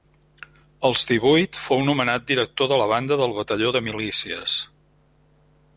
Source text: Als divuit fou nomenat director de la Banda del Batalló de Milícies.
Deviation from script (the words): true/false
false